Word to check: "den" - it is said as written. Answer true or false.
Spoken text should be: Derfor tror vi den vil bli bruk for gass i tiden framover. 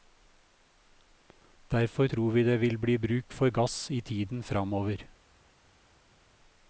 false